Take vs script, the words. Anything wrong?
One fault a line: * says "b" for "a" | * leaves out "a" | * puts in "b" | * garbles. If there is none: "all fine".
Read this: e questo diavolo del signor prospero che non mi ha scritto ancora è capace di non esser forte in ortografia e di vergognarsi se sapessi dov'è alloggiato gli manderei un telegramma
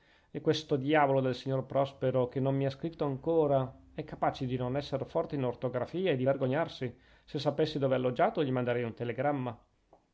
all fine